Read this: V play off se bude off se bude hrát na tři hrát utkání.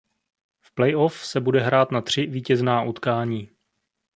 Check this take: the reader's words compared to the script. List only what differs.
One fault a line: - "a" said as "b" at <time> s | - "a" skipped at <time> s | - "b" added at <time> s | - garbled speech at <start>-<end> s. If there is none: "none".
- "off se bude" skipped at 1.6 s
- "hrát" said as "vítězná" at 2.2 s